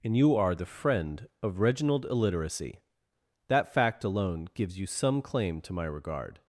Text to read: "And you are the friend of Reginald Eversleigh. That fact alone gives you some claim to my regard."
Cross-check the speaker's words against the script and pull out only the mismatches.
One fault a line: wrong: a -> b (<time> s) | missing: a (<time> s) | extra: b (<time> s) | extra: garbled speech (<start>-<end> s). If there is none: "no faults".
wrong: Eversleigh -> Illiteracy (2.0 s)